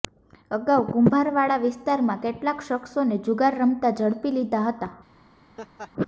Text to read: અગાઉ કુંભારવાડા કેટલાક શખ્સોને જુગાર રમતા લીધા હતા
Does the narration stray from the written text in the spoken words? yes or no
yes